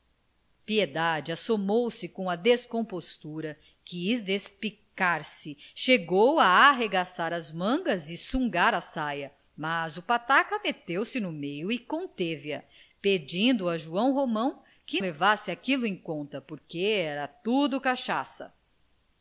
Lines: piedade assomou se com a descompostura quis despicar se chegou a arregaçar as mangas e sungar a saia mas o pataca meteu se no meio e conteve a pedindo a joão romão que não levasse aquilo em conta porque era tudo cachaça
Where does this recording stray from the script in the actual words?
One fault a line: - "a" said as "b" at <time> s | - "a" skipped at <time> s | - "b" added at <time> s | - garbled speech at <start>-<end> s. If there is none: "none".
- "não" skipped at 15.0 s